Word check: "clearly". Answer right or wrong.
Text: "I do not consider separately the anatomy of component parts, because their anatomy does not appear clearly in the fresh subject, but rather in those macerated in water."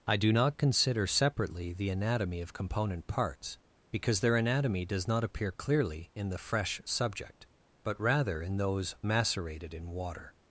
right